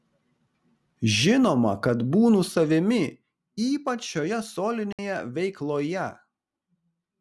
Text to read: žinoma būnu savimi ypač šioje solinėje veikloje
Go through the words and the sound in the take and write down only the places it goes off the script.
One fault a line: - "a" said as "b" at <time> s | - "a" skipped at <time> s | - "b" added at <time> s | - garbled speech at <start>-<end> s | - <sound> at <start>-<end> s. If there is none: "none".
- "kad" added at 1.9 s
- dropout at 4.9-5.0 s